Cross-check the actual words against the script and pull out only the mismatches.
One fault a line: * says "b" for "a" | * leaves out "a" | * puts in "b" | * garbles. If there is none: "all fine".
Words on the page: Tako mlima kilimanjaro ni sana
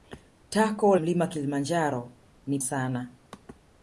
all fine